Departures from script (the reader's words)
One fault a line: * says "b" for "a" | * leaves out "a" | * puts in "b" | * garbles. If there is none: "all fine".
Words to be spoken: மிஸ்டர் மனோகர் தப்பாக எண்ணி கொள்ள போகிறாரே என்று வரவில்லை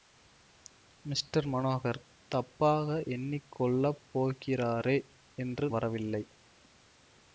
all fine